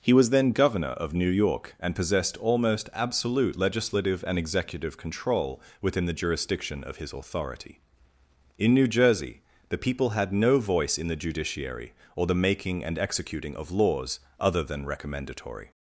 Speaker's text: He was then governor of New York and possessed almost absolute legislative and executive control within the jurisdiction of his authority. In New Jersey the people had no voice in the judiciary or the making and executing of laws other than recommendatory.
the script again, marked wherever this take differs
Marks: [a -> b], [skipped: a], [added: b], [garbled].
He was then governor of New York and possessed almost absolute legislative and executive control within the jurisdiction of his authority. In New Jersey the people had no voice in the judiciary or the making and executing of laws other than recommendatory.